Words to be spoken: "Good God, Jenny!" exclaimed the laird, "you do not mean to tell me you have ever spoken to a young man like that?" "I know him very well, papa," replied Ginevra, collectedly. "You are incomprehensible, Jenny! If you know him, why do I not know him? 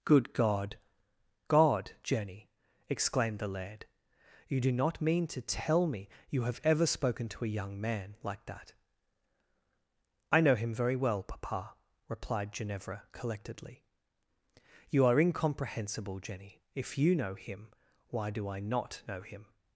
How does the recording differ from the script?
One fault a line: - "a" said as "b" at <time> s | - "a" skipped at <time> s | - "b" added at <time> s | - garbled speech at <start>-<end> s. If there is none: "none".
- "God" added at 1.5 s